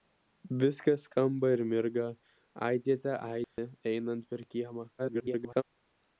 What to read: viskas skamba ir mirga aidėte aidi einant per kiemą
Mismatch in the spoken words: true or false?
true